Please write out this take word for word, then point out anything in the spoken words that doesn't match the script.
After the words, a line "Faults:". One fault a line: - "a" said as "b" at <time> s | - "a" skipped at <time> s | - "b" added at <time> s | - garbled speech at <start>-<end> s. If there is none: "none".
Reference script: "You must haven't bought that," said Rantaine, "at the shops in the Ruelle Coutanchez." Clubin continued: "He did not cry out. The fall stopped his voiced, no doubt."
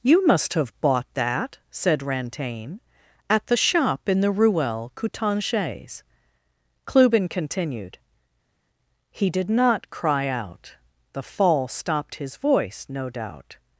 "You must have bought that," said Rantaine, "at the shop in the Ruelle Coutanchez." Clubin continued: "He did not cry out. The fall stopped his voice, no doubt."
Faults:
- "haven't" said as "have" at 0.6 s
- "shops" said as "shop" at 3.6 s
- "voiced" said as "voice" at 12.4 s